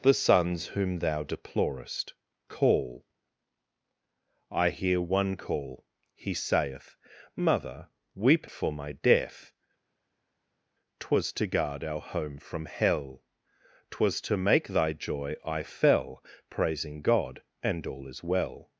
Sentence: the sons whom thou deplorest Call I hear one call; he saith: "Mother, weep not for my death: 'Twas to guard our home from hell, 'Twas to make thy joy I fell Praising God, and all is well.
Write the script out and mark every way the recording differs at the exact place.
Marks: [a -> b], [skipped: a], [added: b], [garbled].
the sons whom thou deplorest Call I hear one call; he saith: "Mother, weep [skipped: not] for my death: 'Twas to guard our home from hell, 'Twas to make thy joy I fell Praising God, and all is well.